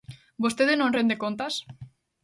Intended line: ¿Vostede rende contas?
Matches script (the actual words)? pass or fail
fail